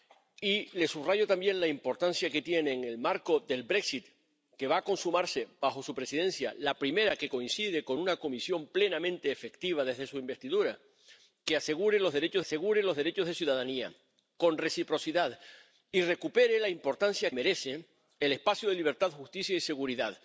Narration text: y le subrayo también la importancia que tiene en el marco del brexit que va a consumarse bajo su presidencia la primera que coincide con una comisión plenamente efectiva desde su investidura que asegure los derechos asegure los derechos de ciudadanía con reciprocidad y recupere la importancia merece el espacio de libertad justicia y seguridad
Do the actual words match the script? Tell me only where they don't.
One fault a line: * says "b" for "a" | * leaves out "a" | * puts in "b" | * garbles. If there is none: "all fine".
all fine